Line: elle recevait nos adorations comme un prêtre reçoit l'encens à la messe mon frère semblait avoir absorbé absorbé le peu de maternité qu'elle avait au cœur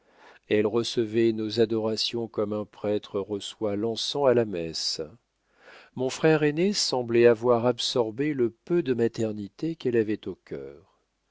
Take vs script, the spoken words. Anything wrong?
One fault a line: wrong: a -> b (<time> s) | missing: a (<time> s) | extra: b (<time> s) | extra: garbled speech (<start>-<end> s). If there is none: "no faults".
extra: aîné (6.4 s)
missing: absorbé (8.3 s)